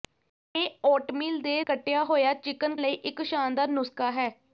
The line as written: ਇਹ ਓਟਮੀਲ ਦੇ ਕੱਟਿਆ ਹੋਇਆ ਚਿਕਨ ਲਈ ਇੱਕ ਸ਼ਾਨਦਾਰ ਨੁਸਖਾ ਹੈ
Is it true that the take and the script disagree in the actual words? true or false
false